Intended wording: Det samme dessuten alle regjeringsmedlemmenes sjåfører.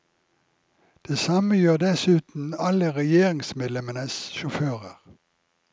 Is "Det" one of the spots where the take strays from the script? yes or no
no